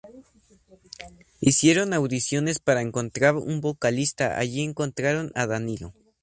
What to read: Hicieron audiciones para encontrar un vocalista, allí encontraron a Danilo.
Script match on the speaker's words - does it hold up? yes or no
yes